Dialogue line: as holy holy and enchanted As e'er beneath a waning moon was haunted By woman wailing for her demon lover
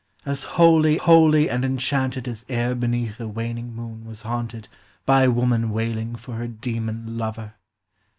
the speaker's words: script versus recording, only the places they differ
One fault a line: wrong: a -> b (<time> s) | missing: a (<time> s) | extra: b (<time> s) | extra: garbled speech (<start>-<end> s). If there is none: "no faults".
no faults